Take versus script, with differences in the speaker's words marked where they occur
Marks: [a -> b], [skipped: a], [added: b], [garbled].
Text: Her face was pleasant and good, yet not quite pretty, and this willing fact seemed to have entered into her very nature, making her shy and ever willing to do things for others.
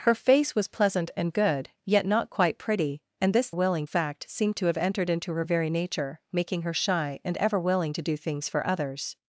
Her face was pleasant and good, yet not quite pretty, and this willing fact seemed to have entered into her very nature, making her shy and ever willing to do things for others.